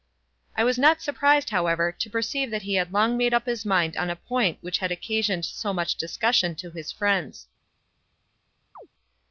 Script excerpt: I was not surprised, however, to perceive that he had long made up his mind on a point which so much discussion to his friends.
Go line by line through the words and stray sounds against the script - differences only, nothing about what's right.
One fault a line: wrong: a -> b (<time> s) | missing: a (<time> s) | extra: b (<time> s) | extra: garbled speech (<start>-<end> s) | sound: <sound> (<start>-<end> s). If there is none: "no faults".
extra: had occasioned (4.8 s)
sound: chirp (8.8-8.9 s)